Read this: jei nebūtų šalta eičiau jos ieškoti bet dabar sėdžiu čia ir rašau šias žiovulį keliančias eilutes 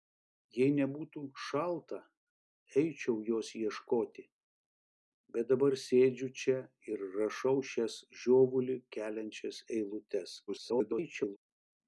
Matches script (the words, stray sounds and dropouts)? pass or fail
fail